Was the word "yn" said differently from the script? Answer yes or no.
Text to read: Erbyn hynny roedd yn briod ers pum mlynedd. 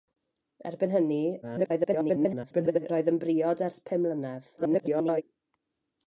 no